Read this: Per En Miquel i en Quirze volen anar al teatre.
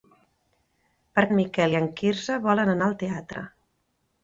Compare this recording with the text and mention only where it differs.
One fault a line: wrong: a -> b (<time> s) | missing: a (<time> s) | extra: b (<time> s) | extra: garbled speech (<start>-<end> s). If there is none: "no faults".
no faults